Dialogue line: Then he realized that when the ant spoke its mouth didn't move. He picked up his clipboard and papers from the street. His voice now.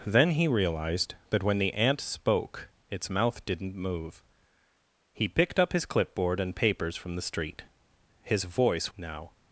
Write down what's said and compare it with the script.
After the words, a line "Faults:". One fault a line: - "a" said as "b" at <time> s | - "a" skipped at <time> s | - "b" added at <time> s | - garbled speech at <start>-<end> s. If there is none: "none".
Then he realized that when the ant spoke its mouth didn't move. He picked up his clipboard and papers from the street. His voice now.
Faults:
none